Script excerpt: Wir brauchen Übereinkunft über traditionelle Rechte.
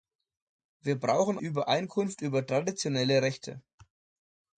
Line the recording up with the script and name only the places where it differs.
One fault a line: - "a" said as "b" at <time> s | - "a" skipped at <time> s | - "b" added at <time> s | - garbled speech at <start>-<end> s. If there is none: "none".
none